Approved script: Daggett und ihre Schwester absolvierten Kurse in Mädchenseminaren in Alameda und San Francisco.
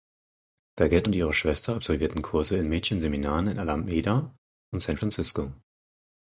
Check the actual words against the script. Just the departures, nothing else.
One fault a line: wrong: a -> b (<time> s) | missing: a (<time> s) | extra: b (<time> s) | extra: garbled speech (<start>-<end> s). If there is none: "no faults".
no faults